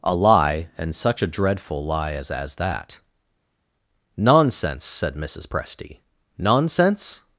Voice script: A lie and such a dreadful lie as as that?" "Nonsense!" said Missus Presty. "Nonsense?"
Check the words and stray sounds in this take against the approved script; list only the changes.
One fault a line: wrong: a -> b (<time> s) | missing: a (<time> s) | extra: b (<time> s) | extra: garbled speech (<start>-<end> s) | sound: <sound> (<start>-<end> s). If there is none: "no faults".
no faults